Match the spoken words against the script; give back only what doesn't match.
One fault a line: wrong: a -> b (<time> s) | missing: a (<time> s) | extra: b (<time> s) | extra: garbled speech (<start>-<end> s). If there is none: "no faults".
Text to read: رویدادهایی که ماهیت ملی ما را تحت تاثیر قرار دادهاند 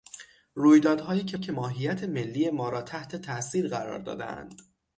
extra: که (1.4 s)